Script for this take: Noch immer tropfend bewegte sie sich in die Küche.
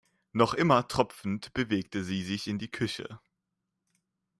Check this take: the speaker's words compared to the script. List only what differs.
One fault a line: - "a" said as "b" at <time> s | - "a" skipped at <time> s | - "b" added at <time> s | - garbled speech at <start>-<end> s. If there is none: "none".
none